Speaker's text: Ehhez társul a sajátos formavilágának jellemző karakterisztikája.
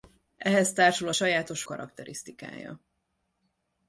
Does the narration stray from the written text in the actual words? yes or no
yes